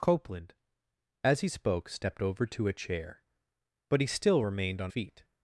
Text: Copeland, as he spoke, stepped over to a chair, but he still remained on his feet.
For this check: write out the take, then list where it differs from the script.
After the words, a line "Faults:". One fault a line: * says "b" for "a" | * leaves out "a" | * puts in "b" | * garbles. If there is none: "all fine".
Copeland, as he spoke, stepped over to a chair, but he still remained on feet.
Faults:
* leaves out "his"